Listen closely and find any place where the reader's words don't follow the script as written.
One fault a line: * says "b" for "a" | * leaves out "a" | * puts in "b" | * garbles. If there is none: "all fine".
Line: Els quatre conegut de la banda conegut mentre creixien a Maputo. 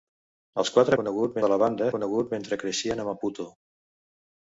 all fine